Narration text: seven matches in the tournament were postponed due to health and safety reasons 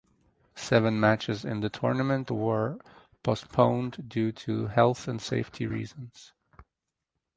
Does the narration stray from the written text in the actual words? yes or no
no